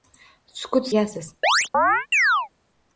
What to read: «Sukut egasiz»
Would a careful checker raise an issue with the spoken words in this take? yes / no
no